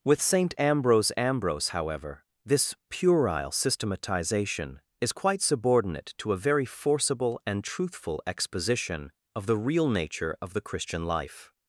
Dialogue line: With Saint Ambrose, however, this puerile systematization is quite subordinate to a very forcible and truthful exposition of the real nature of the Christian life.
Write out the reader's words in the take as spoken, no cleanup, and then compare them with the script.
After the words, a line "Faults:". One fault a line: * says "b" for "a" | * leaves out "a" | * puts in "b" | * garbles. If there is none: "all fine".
With Saint Ambrose Ambrose, however, this puerile systematization is quite subordinate to a very forcible and truthful exposition of the real nature of the Christian life.
Faults:
* puts in "Ambrose"